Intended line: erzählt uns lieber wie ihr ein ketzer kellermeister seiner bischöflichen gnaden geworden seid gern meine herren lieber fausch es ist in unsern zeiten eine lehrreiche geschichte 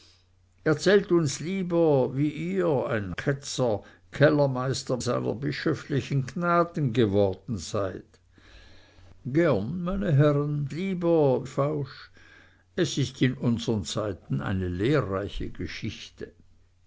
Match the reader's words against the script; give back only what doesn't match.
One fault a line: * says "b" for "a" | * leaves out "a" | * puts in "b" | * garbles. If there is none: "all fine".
all fine